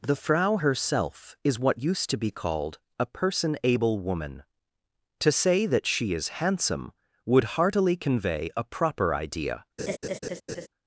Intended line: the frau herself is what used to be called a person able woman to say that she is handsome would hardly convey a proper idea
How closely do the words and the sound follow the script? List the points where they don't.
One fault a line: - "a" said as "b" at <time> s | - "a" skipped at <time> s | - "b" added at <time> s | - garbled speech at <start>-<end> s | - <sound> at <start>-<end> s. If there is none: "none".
- "hardly" said as "heartily" at 7.6 s
- laugh at 9.8-10.7 s